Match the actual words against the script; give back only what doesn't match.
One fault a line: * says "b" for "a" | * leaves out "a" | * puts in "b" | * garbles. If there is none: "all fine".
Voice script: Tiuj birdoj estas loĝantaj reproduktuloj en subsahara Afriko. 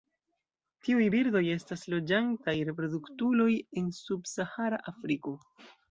all fine